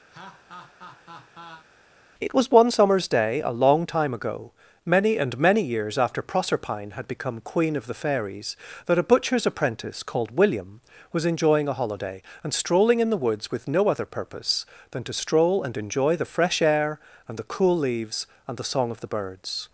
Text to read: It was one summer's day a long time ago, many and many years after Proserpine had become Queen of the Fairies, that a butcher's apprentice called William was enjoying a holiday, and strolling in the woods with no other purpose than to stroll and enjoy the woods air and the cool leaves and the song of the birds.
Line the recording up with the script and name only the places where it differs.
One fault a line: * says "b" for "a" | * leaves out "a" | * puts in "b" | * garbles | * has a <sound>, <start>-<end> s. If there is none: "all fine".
* has a laugh, 0.1-1.7 s
* says "fresh" for "woods"